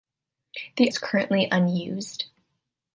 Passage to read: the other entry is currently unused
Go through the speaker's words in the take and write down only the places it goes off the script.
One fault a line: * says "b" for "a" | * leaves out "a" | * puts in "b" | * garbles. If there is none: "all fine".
* leaves out "other entry"